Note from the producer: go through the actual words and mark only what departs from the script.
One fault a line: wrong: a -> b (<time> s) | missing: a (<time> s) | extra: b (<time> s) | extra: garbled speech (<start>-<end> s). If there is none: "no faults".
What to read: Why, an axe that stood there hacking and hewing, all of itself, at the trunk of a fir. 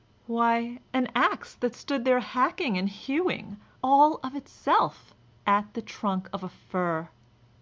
no faults